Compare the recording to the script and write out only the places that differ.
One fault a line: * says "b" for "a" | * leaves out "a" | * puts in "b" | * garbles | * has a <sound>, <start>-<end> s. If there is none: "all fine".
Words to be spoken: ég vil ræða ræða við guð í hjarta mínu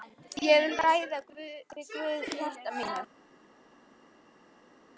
* leaves out "ræða"